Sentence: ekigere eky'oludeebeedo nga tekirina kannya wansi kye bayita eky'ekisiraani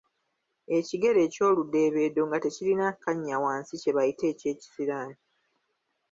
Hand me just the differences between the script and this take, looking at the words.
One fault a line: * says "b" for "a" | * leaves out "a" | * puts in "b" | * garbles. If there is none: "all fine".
all fine